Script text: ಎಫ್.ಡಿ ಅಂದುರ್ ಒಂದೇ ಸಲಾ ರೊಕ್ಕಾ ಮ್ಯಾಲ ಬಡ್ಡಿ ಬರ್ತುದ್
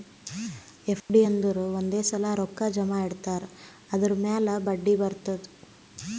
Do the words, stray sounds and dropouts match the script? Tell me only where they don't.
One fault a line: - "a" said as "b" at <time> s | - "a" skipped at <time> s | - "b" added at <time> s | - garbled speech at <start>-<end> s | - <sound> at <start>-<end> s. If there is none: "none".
- dropout at 1.0-1.1 s
- "ಜಮಾ ಇಡ್ತಾರ್ ಅದುರ್" added at 2.7 s